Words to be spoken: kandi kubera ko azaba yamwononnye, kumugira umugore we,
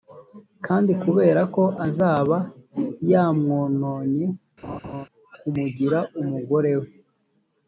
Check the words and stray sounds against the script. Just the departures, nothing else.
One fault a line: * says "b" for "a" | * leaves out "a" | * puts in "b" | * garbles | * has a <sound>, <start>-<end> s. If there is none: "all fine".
* has a laugh, 4.6-5.1 s